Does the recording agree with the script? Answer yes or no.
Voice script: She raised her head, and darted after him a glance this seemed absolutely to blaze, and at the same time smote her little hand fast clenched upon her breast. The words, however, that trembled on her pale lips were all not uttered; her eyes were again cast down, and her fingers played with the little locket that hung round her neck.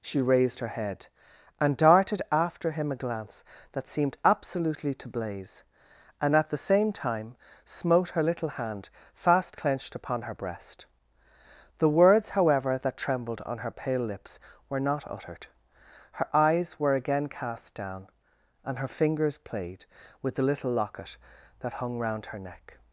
no